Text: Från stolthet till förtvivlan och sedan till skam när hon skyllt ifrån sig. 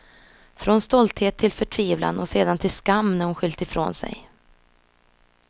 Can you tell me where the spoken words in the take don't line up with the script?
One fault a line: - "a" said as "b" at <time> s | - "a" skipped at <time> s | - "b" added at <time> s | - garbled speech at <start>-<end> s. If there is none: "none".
none